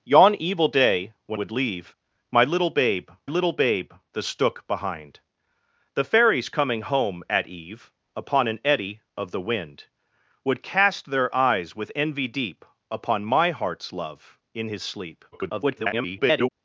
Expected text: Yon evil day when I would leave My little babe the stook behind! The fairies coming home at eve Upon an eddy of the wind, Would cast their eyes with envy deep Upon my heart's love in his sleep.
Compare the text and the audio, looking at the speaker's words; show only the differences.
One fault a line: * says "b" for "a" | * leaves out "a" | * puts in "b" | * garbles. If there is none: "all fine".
* leaves out "I"
* puts in "little babe"
* garbles